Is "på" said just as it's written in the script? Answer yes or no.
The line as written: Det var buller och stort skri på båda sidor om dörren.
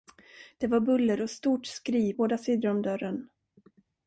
no